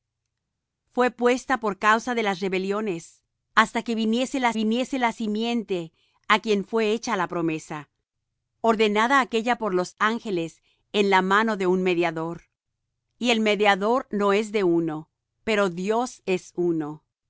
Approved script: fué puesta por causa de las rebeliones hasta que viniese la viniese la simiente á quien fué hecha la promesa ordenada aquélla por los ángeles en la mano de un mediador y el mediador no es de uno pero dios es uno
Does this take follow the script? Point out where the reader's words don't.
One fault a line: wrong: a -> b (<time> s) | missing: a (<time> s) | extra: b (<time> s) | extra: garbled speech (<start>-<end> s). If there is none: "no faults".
no faults